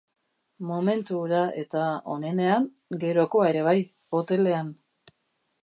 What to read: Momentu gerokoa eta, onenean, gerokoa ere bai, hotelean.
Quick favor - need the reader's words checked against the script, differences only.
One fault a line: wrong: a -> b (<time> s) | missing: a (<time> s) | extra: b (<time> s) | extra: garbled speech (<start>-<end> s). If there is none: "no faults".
wrong: gerokoa -> hura (1.2 s)